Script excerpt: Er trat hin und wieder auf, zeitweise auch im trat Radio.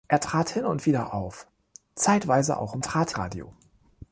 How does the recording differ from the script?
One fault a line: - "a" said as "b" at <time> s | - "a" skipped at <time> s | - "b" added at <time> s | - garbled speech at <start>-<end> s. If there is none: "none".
none